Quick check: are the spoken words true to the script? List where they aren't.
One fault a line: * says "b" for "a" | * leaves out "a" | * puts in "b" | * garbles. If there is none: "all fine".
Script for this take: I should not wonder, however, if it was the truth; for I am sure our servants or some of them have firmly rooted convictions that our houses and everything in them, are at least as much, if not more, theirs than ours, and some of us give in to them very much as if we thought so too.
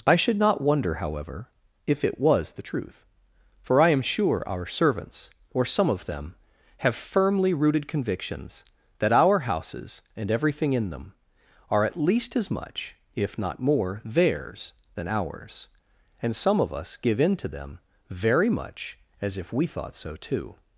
all fine